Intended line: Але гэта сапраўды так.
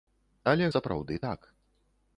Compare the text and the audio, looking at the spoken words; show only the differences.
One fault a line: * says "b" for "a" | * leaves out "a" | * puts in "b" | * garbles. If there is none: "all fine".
* leaves out "гэта"